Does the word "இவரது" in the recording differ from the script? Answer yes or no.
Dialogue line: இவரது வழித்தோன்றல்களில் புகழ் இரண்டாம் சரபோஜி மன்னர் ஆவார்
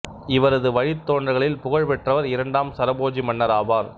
no